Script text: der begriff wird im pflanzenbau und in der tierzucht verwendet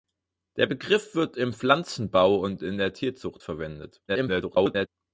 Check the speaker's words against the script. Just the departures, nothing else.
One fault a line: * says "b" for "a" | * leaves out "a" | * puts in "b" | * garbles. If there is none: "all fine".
* garbles